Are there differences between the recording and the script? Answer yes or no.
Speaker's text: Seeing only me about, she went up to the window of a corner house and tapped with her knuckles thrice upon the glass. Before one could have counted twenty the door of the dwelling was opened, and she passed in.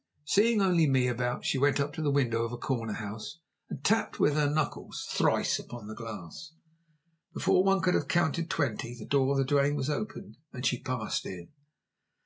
no